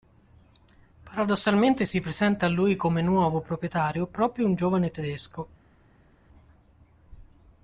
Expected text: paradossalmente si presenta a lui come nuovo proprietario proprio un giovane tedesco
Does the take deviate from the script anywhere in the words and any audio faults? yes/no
no